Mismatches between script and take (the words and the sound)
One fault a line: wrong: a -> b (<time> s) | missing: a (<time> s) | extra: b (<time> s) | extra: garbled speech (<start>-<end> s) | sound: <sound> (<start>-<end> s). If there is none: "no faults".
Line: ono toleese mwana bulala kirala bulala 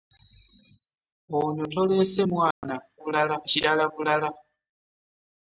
sound: dropout (2.5-2.6 s)